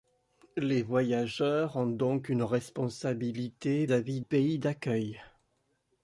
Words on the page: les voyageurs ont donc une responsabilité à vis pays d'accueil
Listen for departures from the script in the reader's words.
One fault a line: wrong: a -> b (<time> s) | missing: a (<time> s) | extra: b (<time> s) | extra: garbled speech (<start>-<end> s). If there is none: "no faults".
no faults